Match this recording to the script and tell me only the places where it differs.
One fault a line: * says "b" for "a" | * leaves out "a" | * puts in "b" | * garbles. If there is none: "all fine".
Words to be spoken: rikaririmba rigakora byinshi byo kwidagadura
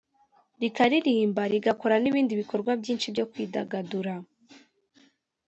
* puts in "n'ibindi bikorwa"